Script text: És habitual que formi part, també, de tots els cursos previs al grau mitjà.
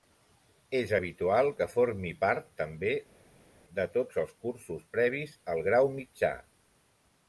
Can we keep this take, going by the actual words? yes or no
yes